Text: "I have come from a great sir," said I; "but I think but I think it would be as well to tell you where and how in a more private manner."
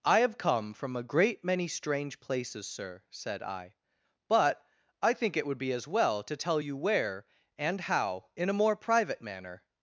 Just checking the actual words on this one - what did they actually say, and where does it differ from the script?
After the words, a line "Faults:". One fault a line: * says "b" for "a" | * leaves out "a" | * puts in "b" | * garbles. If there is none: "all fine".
"I have come from a great many strange places, sir," said I; "but I think it would be as well to tell you where and how in a more private manner."
Faults:
* puts in "many strange places"
* leaves out "but I think"